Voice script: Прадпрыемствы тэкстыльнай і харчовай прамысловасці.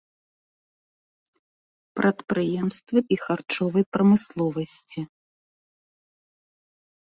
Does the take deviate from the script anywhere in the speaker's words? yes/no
yes